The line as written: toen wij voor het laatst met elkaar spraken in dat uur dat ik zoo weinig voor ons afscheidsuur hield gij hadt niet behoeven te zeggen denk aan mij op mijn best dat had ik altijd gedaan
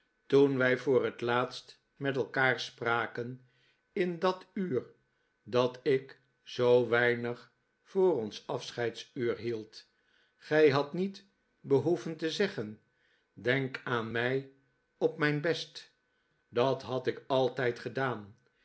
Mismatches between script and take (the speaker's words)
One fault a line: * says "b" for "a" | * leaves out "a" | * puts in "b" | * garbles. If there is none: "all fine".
all fine